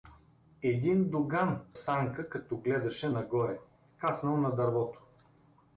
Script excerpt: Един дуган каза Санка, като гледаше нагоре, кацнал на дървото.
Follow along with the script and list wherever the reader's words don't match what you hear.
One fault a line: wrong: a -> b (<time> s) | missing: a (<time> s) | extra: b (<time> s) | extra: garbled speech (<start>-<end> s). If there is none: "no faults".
missing: каза (1.6 s)